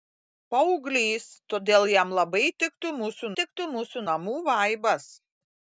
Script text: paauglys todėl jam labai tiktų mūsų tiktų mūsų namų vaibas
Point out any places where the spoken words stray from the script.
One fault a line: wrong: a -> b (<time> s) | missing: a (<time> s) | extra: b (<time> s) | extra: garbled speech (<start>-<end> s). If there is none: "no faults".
no faults